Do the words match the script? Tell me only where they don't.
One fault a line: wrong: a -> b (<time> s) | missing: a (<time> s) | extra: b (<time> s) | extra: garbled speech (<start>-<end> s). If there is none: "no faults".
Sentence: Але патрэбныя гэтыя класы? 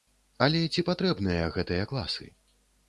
extra: ці (0.7 s)